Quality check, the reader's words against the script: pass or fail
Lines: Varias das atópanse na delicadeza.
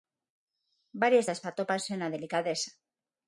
pass